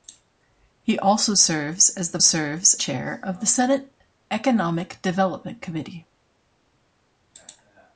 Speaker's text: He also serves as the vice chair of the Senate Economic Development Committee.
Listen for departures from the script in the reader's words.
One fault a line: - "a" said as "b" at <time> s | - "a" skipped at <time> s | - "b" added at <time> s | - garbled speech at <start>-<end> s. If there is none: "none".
- "vice" said as "serves" at 2.2 s